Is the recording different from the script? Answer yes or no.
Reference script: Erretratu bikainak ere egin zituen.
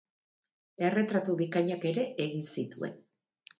no